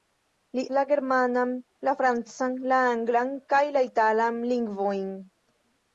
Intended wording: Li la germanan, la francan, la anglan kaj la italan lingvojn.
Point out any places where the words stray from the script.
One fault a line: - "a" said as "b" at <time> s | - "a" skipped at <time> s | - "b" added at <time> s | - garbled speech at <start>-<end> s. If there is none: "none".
none